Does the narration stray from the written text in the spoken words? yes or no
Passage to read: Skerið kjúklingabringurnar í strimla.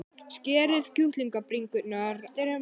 yes